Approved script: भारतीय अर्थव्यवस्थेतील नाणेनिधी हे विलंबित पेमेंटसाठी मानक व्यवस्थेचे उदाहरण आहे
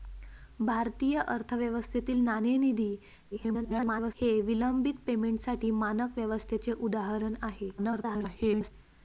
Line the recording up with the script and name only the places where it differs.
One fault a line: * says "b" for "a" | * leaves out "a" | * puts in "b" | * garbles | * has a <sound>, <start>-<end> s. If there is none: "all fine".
* garbles
* garbles